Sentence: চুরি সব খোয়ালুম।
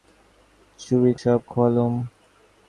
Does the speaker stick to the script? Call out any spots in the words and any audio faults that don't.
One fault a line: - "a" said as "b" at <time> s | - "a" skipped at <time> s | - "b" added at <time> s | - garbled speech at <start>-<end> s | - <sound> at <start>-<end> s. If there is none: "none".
none